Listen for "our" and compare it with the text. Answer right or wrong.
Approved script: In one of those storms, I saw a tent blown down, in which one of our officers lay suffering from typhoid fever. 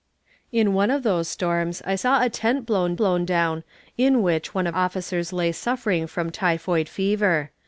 wrong